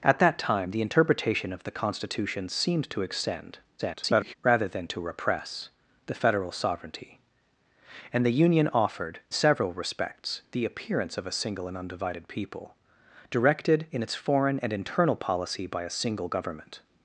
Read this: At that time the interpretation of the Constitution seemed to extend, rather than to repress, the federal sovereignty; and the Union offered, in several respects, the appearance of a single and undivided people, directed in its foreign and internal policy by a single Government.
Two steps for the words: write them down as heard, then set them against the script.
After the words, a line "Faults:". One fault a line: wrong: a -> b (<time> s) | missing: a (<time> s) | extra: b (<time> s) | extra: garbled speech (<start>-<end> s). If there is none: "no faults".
At that time the interpretation of the Constitution seemed to extend, [garbled] rather than to repress, the federal sovereignty; and the Union offered, several respects, the appearance of a single and undivided people, directed in its foreign and internal policy by a single Government.
Faults:
extra: garbled speech (3.8-4.3 s)
missing: in (9.2 s)